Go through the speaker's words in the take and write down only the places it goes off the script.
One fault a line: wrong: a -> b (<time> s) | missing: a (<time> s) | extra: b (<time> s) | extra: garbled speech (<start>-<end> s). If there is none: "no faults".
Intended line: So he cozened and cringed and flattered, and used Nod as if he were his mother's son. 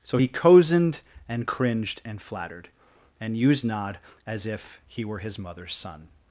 no faults